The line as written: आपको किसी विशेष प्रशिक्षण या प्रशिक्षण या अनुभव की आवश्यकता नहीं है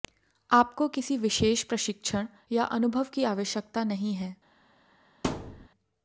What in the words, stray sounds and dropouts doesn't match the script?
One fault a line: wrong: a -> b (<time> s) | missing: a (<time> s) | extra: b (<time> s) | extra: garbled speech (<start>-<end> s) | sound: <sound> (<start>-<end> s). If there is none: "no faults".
missing: प्रशिक्षण या (2.6 s)
sound: thud (5.2-5.7 s)